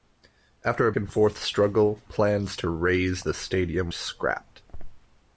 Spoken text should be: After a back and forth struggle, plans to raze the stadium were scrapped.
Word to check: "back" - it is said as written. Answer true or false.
false